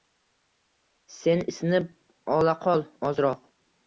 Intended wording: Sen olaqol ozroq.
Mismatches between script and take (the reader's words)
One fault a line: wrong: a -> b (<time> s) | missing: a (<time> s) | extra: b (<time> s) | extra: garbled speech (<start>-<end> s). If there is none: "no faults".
extra: isinib (1.5 s)